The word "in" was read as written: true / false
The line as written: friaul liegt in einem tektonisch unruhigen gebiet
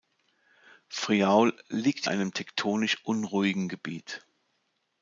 false